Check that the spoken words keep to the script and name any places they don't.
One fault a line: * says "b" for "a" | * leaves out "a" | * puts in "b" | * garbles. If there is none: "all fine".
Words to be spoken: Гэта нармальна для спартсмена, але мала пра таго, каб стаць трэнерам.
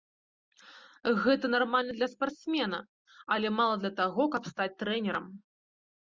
* says "для" for "пра"